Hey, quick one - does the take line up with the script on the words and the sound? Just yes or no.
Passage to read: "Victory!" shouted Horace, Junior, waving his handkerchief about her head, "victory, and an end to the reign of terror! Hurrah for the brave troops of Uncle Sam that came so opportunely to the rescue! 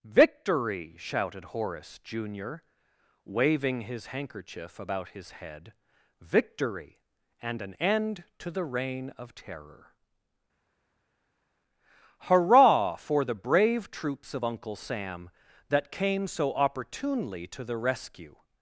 no